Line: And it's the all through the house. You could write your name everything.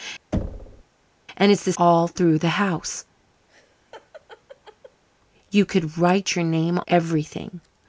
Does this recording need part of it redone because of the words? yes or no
no